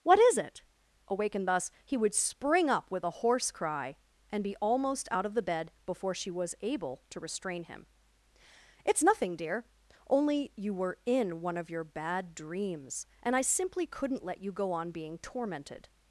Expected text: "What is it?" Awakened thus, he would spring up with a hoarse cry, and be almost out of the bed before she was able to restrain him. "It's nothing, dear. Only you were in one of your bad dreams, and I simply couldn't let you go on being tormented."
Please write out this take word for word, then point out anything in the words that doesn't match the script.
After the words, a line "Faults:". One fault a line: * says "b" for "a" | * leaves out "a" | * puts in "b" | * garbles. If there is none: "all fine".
"What is it?" Awakened thus, he would spring up with a hoarse cry, and be almost out of the bed before she was able to restrain him. "It's nothing, dear. Only you were in one of your bad dreams, and I simply couldn't let you go on being tormented."
Faults:
all fine